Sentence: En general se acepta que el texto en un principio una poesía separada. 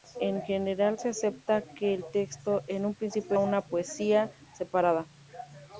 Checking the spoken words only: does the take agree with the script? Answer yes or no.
yes